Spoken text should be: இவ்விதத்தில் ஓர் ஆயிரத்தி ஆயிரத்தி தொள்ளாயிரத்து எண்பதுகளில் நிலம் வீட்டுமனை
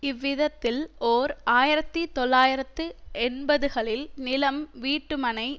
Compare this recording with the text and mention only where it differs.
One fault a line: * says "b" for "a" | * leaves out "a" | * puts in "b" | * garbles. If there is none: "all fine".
* leaves out "ஆயிரத்தி"